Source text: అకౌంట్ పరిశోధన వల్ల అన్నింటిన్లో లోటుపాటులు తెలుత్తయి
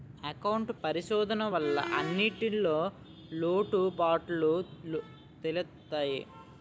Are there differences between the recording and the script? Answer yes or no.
no